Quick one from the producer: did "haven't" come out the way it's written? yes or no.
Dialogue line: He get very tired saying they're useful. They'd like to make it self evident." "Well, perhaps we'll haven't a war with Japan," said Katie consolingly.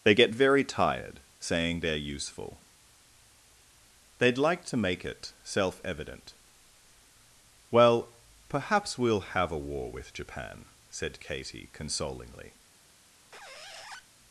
no